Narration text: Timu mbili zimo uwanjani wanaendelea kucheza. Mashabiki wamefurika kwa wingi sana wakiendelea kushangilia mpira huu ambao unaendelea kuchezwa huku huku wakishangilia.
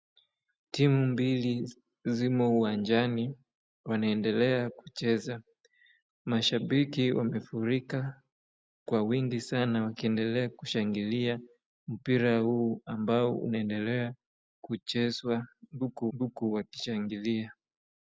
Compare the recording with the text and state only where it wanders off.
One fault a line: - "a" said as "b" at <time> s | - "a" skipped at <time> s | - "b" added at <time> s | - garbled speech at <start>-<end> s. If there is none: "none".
none